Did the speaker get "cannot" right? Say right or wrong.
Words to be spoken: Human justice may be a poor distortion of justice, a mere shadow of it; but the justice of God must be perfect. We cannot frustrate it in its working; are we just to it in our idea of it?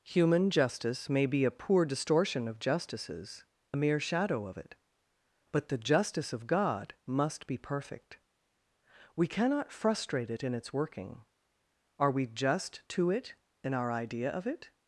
right